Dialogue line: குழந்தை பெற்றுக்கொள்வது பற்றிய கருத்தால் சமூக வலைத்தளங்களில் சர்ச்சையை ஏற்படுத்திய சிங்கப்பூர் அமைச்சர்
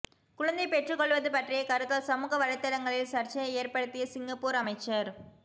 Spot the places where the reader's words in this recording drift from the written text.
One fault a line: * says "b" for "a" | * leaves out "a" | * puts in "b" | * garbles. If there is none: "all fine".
all fine